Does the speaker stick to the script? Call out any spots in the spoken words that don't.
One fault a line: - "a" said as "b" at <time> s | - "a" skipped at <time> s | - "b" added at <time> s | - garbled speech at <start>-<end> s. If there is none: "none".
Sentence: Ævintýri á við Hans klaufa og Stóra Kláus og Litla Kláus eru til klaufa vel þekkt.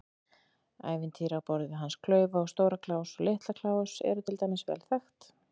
- "borð" added at 1.5 s
- "klaufa" said as "dæmis" at 4.4 s